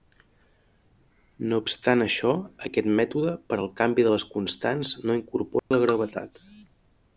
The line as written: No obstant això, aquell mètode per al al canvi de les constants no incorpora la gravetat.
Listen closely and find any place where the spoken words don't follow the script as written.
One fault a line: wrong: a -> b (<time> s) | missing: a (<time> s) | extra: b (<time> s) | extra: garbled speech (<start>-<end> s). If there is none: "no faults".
wrong: aquell -> aquest (2.7 s)
missing: al (3.7 s)